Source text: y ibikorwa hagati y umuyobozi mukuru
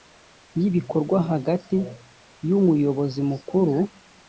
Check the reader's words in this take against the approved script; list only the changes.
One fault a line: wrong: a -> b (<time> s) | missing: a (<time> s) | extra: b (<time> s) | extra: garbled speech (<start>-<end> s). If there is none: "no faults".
no faults